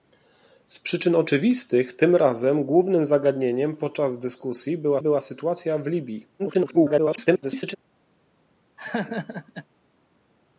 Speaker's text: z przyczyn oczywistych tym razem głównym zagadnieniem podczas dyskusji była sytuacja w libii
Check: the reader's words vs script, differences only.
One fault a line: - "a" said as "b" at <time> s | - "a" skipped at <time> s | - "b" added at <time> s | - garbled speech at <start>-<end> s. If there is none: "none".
- "była" added at 5.0 s
- garbled speech at 6.4-7.8 s